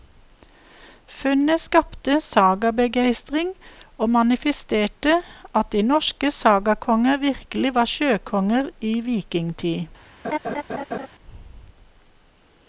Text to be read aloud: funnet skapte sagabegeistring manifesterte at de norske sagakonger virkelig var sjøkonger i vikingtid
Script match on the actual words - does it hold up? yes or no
no